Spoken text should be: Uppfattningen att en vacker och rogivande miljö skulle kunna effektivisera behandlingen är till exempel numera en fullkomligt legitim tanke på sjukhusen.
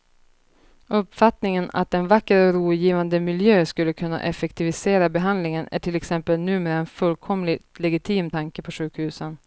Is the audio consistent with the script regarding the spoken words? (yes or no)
yes